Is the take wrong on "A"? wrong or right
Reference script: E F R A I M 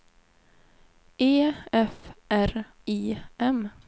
wrong